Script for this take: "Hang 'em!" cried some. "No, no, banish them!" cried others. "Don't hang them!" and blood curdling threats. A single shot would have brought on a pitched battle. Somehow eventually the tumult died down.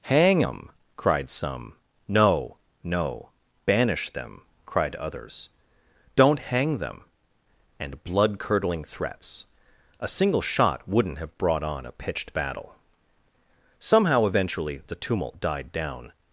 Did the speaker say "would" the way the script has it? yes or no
no